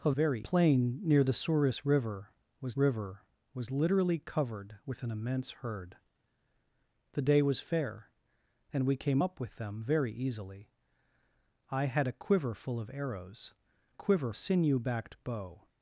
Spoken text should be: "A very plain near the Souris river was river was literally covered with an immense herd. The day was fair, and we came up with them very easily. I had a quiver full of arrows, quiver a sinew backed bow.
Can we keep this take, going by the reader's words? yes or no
yes